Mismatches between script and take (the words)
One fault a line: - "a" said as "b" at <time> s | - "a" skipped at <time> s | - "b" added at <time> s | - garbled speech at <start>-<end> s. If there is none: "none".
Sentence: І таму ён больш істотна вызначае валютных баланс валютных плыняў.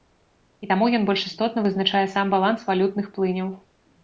- "валютных" said as "сам" at 2.1 s